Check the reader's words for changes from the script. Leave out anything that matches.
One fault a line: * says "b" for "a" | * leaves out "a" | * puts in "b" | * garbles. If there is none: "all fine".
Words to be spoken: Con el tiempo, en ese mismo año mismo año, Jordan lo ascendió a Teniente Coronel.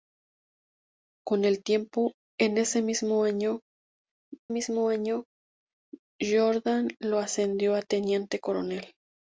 all fine